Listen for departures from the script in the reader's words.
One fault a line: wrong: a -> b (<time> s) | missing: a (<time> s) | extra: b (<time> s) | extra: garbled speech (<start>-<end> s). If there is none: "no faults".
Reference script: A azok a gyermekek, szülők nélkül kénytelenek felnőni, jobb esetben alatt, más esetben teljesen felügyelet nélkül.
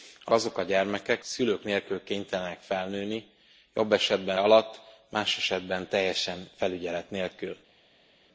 no faults